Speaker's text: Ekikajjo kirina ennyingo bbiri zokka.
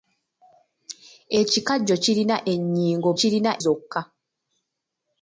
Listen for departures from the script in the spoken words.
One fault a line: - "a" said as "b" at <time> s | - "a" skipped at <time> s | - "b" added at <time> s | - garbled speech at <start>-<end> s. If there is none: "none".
- "bbiri" said as "kirina" at 3.2 s